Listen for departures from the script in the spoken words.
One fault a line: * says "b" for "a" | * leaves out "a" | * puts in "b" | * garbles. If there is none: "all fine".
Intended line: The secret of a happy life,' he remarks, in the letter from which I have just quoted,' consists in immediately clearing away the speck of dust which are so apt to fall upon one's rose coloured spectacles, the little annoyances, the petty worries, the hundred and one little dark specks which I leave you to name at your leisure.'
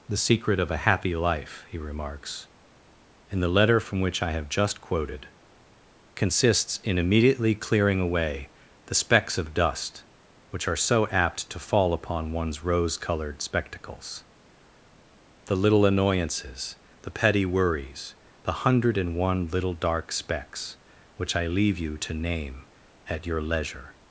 * says "specks" for "speck"